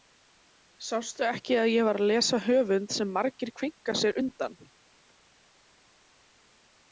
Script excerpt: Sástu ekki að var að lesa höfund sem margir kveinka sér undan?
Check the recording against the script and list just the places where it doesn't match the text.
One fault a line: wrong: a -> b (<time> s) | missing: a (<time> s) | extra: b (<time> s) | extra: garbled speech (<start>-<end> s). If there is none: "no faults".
extra: ég (1.7 s)